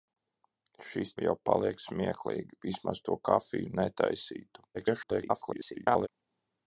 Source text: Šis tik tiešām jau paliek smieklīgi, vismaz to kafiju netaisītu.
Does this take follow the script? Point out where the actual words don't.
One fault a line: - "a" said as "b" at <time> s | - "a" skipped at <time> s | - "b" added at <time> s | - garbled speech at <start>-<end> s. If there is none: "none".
- "tik tiešām" skipped at 1.1 s
- garbled speech at 4.7-6.1 s